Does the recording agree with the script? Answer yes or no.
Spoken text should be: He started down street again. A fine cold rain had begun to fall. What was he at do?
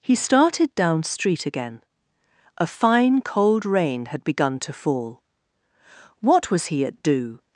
yes